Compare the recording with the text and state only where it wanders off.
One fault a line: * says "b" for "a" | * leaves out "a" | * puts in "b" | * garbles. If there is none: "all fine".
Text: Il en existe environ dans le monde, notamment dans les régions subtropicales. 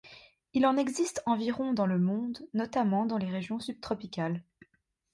all fine